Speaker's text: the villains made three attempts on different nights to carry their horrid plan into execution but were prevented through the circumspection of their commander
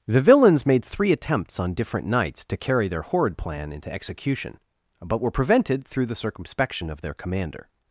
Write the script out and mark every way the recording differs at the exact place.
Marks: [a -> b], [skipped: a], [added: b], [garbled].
the villains made three attempts on different nights to carry their horrid plan into execution but were prevented through the circumspection of their commander